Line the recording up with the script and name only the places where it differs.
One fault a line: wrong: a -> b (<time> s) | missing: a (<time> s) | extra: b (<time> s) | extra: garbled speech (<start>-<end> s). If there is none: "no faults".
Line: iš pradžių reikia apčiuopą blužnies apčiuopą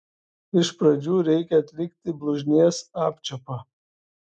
wrong: apčiuopą -> atlikti (1.6 s)